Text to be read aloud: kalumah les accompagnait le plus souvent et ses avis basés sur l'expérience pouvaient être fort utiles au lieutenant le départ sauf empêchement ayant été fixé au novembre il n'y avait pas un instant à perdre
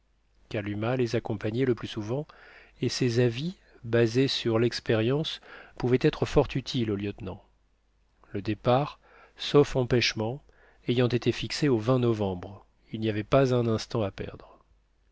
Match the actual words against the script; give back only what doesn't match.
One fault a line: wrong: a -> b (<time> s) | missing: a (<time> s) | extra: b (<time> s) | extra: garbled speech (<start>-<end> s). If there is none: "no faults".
no faults